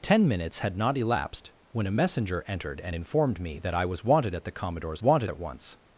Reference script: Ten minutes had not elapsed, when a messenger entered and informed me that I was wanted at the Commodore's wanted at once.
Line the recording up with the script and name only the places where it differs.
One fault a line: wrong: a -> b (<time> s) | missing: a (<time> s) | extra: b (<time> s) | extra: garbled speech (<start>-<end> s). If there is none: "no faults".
no faults